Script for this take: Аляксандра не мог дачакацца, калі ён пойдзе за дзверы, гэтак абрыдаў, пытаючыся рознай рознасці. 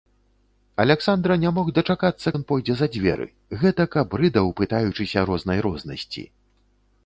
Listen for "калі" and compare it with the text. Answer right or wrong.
wrong